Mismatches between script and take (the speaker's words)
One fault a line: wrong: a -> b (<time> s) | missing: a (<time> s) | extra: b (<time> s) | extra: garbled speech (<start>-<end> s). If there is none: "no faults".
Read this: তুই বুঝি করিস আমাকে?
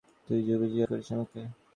no faults